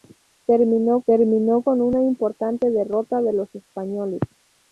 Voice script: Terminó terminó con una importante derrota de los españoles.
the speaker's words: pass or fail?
pass